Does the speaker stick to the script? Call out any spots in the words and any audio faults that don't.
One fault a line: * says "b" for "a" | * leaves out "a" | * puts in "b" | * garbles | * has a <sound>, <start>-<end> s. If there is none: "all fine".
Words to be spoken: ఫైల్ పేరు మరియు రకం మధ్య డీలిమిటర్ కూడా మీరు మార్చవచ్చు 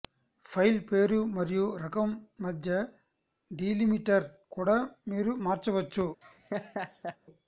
* has a laugh, 6.2-7.2 s